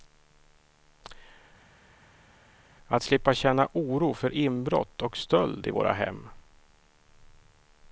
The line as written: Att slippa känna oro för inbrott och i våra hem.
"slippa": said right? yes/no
yes